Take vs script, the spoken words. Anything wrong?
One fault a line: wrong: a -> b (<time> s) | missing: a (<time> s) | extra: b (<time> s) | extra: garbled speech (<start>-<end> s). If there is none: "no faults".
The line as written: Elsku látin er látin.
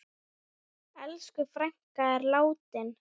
wrong: látin -> frænka (1.5 s)